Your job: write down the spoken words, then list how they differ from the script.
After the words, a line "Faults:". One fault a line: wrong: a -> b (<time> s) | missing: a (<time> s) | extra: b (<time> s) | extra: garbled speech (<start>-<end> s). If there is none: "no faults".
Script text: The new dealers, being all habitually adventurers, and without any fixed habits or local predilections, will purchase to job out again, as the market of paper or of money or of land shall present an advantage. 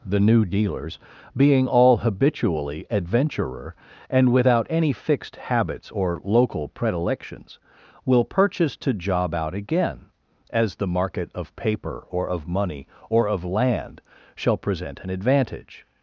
The new dealers, being all habitually adventurer, and without any fixed habits or local predilections, will purchase to job out again, as the market of paper or of money or of land shall present an advantage.
Faults:
wrong: adventurers -> adventurer (2.9 s)